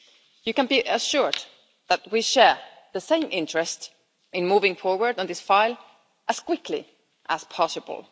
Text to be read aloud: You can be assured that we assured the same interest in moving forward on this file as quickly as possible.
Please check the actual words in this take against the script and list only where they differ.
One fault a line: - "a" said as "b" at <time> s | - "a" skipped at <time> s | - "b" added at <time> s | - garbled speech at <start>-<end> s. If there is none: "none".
- "assured" said as "share" at 2.2 s